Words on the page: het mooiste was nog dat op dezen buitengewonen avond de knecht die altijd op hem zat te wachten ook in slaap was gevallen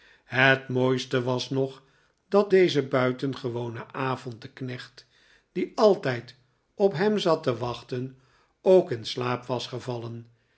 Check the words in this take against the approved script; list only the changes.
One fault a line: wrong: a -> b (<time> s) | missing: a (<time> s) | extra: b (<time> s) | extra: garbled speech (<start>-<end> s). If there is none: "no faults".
missing: op (2.5 s)